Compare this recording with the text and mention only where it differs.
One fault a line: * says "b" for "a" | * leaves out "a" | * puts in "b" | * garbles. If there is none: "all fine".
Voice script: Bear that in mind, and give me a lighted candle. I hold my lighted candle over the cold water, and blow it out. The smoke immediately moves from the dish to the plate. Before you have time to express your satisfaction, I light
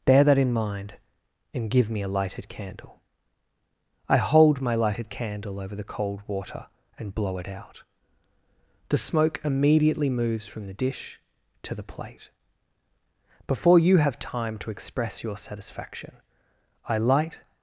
all fine